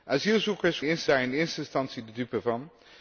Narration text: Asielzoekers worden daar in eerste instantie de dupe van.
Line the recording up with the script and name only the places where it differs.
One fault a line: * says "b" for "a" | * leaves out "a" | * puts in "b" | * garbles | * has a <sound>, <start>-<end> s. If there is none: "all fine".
* says "eerste" for "worden"